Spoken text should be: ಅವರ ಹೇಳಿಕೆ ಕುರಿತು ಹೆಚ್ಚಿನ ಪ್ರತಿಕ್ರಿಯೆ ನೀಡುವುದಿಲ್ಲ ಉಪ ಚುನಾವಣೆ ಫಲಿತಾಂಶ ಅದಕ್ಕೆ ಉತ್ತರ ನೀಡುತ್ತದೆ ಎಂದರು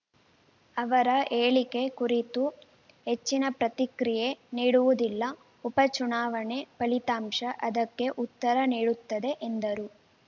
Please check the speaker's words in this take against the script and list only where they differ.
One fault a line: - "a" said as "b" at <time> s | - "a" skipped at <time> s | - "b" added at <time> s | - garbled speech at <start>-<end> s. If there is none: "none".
none